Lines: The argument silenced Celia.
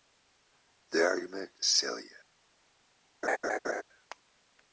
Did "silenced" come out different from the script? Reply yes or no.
yes